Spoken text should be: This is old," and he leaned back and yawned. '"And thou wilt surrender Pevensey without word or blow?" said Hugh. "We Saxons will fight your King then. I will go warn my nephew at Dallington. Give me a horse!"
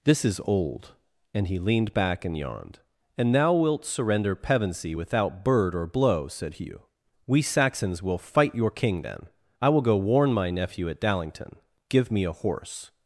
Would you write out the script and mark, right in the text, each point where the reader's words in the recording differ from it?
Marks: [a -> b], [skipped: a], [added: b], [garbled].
This is old," and he leaned back and yawned. '"And thou wilt surrender Pevensey without [word -> bird] or blow?" said Hugh. "We Saxons will fight your King then. I will go warn my nephew at Dallington. Give me a horse!"